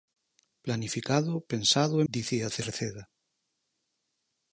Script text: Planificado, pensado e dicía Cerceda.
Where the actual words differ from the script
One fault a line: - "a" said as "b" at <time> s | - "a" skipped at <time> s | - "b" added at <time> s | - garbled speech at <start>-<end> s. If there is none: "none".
none